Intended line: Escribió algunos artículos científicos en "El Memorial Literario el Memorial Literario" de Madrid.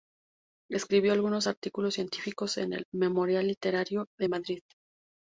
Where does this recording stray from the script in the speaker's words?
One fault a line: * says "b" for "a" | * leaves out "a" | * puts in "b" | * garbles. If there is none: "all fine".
* leaves out "el Memorial Literario"